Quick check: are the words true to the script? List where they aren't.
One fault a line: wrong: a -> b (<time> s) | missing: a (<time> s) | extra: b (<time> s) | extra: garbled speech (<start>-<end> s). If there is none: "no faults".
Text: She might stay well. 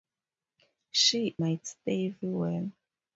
no faults